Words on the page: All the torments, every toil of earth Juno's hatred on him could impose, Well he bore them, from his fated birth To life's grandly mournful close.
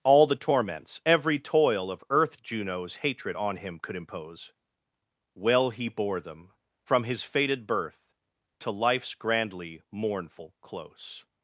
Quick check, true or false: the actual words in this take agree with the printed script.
true